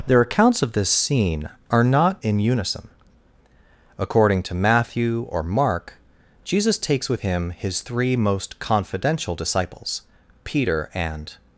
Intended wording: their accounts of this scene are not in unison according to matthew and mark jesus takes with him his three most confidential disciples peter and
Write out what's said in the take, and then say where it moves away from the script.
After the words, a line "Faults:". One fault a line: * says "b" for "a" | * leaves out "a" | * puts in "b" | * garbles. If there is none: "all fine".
their accounts of this scene are not in unison according to matthew or mark jesus takes with him his three most confidential disciples peter and
Faults:
* says "or" for "and"